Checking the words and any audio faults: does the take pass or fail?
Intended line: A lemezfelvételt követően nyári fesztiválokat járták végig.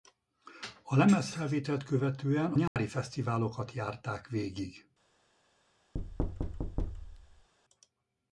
fail